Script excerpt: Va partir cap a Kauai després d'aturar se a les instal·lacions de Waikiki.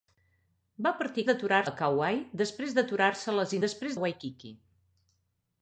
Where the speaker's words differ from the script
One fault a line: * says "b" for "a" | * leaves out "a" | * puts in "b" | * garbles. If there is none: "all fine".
* says "d'aturar" for "cap"
* says "després" for "instal·lacions"